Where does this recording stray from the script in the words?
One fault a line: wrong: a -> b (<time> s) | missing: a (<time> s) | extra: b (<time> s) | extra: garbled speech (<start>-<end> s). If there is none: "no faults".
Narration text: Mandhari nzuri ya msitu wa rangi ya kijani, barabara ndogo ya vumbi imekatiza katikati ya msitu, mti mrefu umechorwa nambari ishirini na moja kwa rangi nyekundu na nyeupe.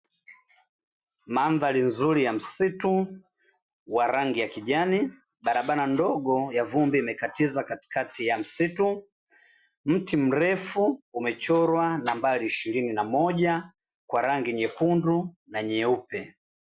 no faults